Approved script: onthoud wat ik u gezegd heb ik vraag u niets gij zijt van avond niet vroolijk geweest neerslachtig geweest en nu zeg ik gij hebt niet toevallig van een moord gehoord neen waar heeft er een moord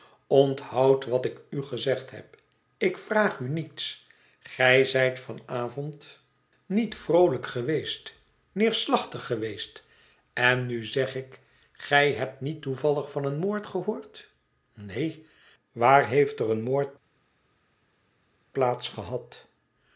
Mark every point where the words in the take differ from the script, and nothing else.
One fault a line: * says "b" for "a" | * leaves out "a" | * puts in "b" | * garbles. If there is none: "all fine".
all fine